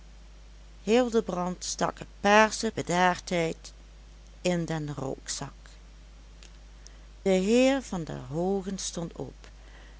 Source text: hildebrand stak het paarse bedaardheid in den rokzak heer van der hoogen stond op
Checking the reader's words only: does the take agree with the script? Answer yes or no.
yes